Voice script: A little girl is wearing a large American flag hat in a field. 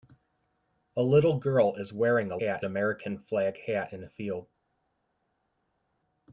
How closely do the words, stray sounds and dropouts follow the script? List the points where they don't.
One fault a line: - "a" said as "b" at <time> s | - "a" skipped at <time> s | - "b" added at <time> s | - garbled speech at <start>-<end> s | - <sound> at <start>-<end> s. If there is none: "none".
- "large" said as "hat" at 2.4 s